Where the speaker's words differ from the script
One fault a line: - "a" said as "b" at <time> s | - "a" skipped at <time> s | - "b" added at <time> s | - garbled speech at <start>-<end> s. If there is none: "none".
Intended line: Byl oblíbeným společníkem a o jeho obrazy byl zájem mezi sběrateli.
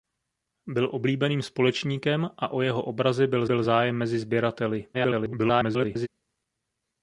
- "byl" added at 3.4 s
- garbled speech at 4.9-6.1 s